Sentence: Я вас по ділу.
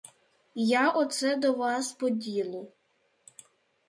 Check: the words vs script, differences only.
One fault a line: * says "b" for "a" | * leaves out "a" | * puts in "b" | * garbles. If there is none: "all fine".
* puts in "оце до"